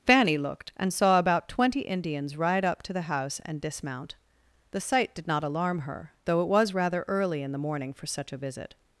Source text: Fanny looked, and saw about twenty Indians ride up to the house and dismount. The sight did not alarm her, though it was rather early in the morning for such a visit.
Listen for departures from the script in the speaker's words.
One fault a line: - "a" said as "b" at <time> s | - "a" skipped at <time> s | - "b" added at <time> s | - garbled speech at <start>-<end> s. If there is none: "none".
none